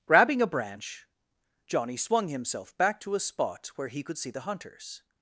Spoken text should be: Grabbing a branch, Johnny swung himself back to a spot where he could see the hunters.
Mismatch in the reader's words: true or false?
false